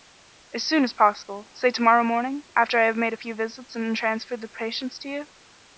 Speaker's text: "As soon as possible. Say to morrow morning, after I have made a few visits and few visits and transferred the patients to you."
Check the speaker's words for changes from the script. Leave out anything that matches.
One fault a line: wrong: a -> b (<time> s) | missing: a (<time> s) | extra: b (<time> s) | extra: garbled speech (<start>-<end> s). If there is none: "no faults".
missing: few visits and (3.9 s)